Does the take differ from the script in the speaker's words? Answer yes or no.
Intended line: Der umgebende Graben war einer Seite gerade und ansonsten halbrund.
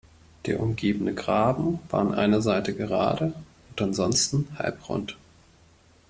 yes